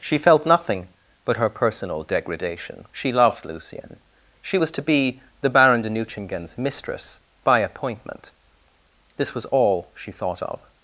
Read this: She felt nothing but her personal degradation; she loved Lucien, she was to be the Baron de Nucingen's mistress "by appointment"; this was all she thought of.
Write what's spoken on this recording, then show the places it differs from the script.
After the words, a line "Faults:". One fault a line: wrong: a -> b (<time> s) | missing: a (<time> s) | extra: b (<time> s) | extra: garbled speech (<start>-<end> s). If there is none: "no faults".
She felt nothing but her personal degradation; she loved Lucien, she was to be the Baron de Nucingen's mistress "by appointment"; this was all she thought of.
Faults:
no faults